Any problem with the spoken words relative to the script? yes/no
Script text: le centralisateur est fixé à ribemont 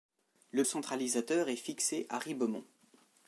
no